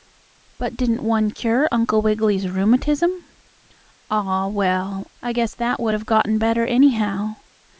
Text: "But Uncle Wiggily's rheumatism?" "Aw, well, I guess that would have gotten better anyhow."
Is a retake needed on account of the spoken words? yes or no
yes